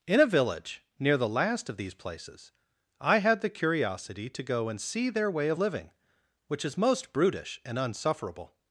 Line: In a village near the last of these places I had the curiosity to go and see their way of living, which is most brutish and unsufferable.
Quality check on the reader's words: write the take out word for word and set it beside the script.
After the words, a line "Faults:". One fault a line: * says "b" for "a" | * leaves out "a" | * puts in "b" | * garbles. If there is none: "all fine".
In a village near the last of these places I had the curiosity to go and see their way of living, which is most brutish and unsufferable.
Faults:
all fine